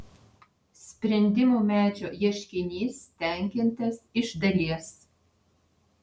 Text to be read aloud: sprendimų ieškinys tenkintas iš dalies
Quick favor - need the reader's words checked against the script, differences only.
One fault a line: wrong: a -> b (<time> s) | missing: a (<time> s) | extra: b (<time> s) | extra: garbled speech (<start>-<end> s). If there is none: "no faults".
extra: medžio (1.7 s)